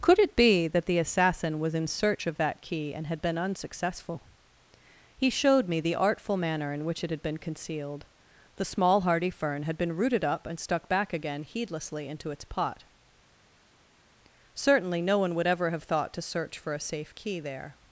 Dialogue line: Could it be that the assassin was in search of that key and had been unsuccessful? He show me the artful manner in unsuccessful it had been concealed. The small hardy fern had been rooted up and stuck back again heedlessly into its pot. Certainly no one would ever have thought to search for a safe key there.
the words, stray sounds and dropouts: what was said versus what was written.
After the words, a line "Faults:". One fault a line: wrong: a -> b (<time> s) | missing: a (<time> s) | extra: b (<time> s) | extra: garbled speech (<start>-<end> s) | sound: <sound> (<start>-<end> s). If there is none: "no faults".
Could it be that the assassin was in search of that key and had been unsuccessful? He showed me the artful manner in which it had been concealed. The small hardy fern had been rooted up and stuck back again heedlessly into its pot. Certainly no one would ever have thought to search for a safe key there.
Faults:
wrong: show -> showed (5.3 s)
wrong: unsuccessful -> which (6.9 s)